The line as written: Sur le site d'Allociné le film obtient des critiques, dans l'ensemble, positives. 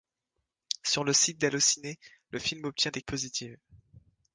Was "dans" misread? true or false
true